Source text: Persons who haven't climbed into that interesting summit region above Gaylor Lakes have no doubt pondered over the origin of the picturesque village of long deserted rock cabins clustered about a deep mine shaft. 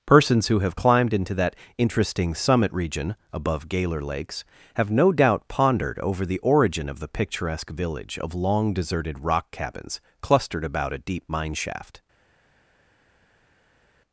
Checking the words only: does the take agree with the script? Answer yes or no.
no